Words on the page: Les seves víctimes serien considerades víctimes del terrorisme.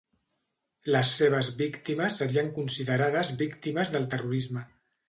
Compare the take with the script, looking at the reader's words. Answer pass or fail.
pass